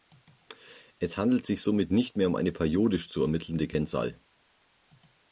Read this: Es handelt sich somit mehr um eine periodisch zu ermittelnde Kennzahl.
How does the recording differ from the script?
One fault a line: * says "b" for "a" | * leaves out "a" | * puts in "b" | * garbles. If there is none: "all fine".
* puts in "nicht"